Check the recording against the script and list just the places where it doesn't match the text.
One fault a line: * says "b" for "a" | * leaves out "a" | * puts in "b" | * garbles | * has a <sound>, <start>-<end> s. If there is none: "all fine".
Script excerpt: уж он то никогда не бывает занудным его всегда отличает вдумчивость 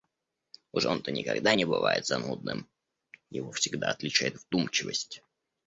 all fine